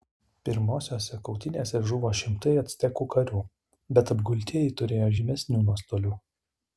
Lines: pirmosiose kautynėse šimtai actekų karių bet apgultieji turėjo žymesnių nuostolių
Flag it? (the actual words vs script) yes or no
yes